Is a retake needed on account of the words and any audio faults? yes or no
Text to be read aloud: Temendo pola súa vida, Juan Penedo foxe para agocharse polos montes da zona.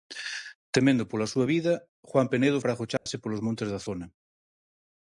yes